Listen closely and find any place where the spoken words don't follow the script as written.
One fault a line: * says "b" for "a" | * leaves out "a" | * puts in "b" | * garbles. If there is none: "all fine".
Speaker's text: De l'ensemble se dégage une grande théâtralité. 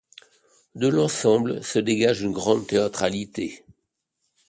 all fine